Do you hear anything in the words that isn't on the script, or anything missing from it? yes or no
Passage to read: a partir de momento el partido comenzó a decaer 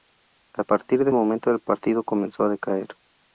no